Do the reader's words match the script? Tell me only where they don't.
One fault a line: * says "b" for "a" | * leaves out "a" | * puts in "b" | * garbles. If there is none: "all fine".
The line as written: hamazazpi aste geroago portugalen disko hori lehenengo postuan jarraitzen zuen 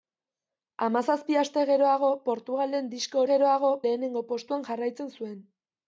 * says "geroago" for "hori"